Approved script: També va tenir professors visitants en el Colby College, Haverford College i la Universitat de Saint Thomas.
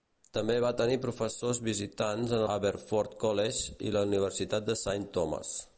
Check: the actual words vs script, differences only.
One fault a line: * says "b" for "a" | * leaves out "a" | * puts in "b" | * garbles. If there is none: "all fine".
* leaves out "el Colby College"